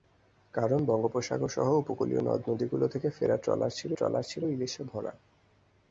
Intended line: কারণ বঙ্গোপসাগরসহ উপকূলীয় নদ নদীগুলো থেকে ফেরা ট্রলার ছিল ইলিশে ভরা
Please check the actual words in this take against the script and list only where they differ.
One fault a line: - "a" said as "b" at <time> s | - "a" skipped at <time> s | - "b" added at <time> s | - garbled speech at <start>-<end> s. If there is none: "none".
- "ট্রলার ছিল" added at 3.9 s